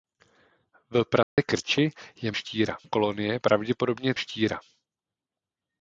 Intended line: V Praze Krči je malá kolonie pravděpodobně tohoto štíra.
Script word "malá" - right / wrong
wrong